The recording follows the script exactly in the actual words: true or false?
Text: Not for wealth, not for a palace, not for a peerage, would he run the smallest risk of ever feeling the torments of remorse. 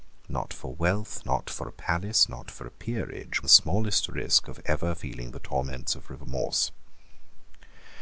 false